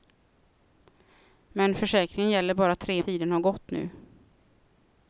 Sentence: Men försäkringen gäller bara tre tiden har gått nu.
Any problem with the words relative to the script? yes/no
no